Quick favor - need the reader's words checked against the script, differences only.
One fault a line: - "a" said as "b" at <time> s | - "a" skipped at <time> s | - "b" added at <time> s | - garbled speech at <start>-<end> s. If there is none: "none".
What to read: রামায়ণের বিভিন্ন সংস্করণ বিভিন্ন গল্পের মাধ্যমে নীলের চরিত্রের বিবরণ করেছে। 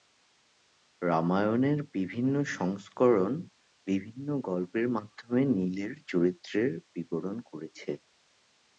none